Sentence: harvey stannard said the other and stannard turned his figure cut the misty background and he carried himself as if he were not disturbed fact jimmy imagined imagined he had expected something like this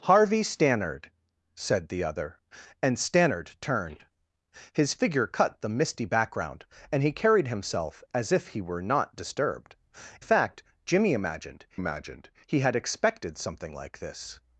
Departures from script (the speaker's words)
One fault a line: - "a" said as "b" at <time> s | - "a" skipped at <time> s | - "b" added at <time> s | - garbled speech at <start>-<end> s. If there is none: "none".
none